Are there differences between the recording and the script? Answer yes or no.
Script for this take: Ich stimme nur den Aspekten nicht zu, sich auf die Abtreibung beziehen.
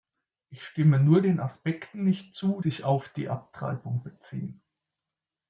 no